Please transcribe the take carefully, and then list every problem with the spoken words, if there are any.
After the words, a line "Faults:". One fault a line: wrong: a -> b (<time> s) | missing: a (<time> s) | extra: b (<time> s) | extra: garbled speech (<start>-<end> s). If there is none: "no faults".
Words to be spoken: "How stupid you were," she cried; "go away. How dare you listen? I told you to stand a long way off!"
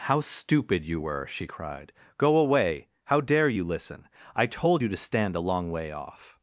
"How stupid you were," she cried; "go away. How dare you listen? I told you to stand a long way off!"
Faults:
no faults